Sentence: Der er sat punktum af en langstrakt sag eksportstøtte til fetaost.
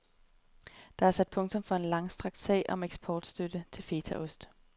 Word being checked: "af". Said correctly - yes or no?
no